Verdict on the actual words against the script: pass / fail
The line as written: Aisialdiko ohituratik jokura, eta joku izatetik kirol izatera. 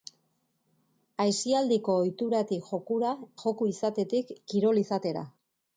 fail